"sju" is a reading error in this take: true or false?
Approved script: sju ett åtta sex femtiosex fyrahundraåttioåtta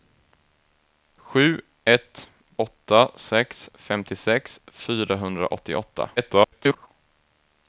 false